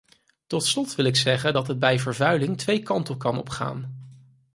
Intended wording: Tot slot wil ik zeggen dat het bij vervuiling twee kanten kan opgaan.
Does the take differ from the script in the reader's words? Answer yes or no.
no